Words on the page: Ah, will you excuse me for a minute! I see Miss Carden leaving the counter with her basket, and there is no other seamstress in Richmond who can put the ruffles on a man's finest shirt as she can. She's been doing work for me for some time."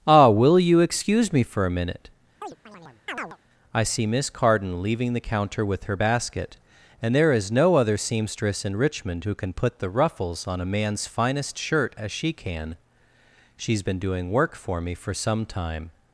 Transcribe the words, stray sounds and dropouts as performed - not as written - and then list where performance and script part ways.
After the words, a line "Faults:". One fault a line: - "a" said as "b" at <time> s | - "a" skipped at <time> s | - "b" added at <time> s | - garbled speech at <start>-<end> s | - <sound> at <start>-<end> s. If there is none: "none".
Ah, will you excuse me for a minute! I see Miss Carden leaving the counter with her basket, and there is no other seamstress in Richmond who can put the ruffles on a man's finest shirt as she can. She's been doing work for me for some time."
Faults:
- chirp at 2.4-3.4 s